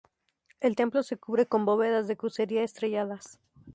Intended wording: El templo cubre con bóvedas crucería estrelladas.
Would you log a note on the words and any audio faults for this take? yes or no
yes